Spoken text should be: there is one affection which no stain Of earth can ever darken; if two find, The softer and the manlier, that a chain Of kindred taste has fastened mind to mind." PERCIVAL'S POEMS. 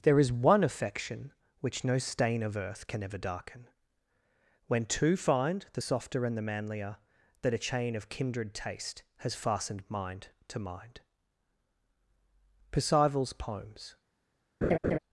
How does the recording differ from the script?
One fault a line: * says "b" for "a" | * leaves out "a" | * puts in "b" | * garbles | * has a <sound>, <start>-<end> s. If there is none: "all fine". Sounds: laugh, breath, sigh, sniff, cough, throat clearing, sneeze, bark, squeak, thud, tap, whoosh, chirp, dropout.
* says "when" for "if"
* has a laugh, 14.6-15.0 s